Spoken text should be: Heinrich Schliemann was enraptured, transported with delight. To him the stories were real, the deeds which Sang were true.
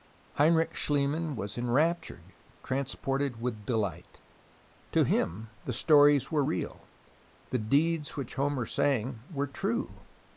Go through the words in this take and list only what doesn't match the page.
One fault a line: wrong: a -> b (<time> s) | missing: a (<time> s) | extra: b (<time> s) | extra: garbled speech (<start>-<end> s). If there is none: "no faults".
extra: Homer (8.3 s)